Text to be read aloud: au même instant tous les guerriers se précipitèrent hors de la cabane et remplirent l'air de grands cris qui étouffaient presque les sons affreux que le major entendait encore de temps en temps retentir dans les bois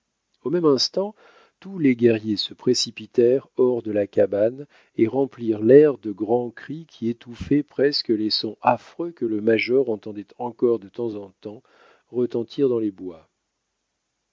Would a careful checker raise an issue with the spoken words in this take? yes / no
no